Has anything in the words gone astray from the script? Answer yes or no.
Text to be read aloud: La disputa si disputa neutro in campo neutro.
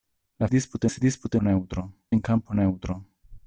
no